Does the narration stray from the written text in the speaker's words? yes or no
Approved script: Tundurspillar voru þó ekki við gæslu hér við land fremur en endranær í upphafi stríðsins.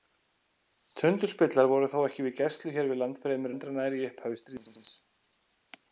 yes